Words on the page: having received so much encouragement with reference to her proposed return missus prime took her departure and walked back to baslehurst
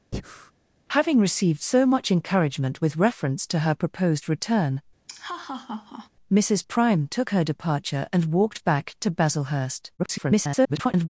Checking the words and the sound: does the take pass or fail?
fail